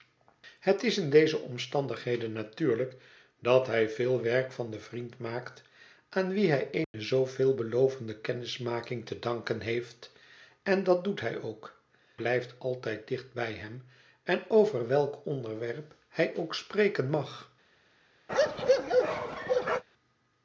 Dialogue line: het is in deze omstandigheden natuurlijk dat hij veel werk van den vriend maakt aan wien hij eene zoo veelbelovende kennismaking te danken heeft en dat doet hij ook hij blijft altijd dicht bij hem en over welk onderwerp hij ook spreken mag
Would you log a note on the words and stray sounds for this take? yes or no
yes